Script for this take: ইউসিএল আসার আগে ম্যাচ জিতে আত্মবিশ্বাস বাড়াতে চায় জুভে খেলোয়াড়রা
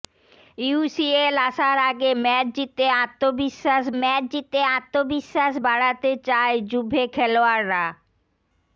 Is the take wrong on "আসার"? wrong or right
right